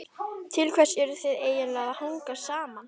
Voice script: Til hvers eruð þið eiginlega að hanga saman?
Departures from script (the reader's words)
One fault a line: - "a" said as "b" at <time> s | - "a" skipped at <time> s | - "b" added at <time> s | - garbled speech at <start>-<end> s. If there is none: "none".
none